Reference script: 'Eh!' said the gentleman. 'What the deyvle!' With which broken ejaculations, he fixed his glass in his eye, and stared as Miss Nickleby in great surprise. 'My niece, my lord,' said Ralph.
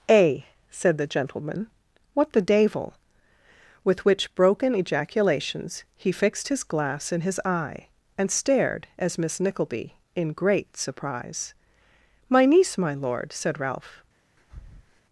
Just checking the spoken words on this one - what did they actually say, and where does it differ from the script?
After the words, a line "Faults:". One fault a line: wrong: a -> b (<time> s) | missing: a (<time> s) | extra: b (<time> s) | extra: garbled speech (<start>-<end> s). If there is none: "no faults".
'Eh!' said the gentleman. 'What the deyvle!' With which broken ejaculations, he fixed his glass in his eye, and stared as Miss Nickleby in great surprise. 'My niece, my lord,' said Ralph.
Faults:
no faults